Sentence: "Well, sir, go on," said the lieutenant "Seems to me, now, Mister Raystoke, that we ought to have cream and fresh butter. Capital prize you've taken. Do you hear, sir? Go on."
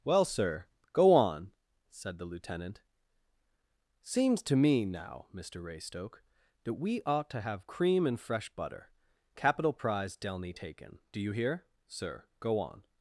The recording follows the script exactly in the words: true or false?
false